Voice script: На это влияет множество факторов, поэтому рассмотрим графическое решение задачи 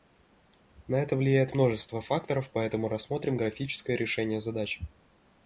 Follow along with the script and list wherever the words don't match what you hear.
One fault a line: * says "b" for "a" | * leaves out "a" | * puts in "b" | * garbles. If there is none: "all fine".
all fine